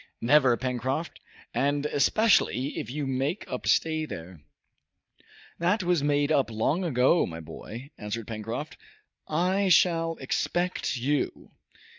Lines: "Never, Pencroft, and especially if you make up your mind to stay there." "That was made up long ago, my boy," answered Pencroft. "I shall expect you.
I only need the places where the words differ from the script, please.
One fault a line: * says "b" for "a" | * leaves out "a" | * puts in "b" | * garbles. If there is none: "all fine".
* leaves out "your mind to"